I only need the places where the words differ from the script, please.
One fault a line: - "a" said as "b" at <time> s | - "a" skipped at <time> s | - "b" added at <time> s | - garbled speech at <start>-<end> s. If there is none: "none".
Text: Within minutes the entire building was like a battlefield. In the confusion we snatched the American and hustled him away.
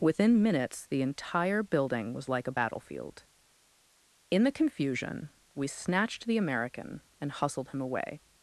none